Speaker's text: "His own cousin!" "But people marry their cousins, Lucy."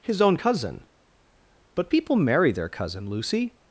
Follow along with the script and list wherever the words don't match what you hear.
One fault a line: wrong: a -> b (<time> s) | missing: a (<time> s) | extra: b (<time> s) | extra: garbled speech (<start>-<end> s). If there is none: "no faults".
wrong: cousins -> cousin (2.7 s)